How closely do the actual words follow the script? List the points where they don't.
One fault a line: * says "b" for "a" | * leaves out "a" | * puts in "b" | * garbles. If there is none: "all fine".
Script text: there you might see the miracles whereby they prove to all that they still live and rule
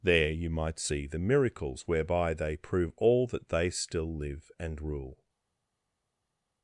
* leaves out "to"